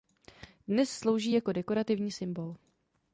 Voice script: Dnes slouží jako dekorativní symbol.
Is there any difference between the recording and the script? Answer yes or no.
no